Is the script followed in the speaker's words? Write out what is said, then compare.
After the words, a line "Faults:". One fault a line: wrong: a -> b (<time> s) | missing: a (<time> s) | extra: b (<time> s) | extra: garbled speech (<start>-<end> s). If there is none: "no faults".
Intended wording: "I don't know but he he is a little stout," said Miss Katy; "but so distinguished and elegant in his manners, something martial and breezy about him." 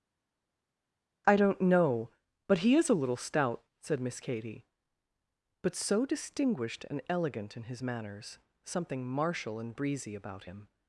"I don't know but he is a little stout," said Miss Katy; "but so distinguished and elegant in his manners, something martial and breezy about him."
Faults:
missing: he (2.7 s)